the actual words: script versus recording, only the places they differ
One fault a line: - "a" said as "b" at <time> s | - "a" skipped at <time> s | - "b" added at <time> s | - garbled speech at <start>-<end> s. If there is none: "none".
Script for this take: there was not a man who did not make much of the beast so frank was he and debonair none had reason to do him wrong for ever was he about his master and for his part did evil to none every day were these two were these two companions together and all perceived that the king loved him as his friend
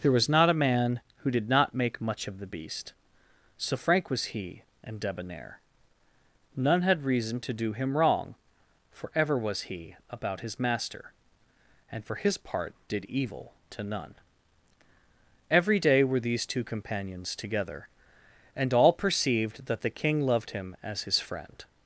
- "were these two" skipped at 16.6 s